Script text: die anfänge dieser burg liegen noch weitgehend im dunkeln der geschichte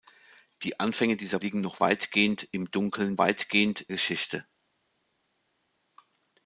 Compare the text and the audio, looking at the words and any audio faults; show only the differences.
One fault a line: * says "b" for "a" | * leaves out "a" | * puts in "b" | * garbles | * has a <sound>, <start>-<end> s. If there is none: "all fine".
* leaves out "burg"
* says "weitgehend" for "der"